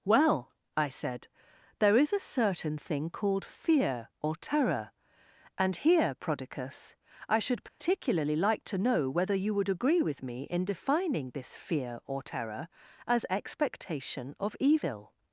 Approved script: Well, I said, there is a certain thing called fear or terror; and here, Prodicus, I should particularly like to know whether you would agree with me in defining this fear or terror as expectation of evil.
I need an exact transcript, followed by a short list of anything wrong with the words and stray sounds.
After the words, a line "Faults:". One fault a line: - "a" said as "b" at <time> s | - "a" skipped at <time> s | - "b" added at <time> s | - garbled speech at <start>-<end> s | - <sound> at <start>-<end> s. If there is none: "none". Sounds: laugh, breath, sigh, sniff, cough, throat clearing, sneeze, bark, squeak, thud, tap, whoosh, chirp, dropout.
Well, I said, there is a certain thing called fear or terror; and here, Prodicus, I should particularly like to know whether you would agree with me in defining this fear or terror as expectation of evil.
Faults:
- dropout at 7.7-7.8 s